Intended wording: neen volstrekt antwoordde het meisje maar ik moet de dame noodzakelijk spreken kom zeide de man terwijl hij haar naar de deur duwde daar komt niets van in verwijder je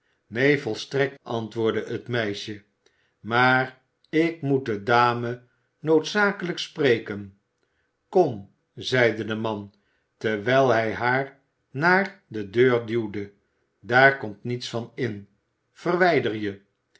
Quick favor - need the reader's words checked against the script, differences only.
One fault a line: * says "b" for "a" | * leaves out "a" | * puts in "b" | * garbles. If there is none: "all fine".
all fine